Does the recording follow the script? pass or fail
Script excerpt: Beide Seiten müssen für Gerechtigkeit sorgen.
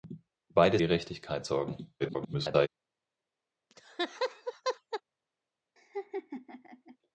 fail